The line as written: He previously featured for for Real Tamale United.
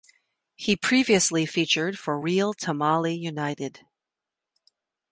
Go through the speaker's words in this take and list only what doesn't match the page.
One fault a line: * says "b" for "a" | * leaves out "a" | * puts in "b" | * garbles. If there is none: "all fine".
* leaves out "for"